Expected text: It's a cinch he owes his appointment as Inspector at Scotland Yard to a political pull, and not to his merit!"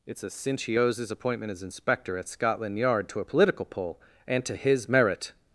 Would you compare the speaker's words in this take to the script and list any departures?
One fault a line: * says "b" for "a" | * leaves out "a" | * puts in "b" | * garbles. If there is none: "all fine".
* leaves out "not"